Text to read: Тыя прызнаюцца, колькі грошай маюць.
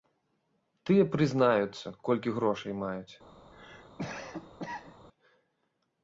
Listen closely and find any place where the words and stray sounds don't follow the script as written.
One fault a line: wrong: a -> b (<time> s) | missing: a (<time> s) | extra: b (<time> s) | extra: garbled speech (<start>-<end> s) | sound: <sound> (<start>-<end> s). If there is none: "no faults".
sound: cough (3.5-5.1 s)